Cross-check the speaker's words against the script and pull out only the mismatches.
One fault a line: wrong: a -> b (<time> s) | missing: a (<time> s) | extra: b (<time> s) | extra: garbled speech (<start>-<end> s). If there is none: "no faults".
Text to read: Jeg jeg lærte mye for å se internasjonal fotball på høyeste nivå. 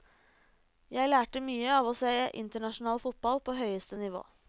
missing: jeg (1.1 s)
wrong: for -> av (1.8 s)